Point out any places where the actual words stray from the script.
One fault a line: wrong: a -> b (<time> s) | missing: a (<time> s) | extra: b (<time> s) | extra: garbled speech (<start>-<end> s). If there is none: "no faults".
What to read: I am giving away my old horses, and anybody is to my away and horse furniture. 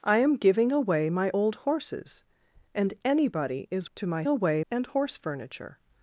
no faults